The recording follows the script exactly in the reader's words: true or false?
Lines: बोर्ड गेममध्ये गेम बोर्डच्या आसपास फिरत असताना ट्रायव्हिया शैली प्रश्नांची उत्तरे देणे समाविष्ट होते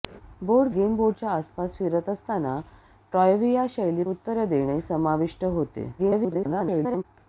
false